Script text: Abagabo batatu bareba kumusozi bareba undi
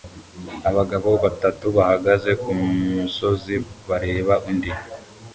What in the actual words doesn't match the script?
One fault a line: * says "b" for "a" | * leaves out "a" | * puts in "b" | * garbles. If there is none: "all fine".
* says "bahagaze" for "bareba"